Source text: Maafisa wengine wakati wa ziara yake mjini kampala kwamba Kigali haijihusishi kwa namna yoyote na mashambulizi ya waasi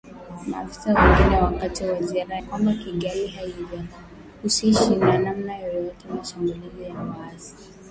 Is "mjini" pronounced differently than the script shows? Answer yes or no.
yes